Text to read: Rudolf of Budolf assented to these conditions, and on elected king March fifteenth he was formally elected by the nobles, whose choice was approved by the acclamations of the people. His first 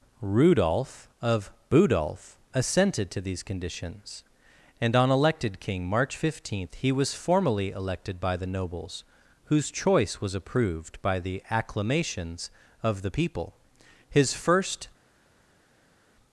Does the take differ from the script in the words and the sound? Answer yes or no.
no